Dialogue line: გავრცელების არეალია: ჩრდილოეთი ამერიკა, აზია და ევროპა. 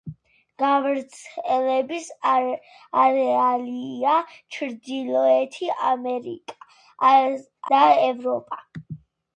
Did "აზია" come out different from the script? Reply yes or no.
yes